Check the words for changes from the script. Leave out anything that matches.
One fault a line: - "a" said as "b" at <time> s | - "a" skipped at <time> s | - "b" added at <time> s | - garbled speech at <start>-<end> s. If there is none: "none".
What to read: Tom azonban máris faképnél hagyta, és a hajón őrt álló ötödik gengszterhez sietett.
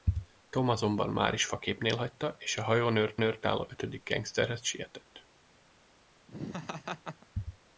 - "őrt" added at 3.2 s